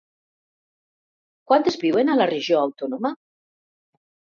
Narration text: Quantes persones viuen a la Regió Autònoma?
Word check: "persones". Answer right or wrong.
wrong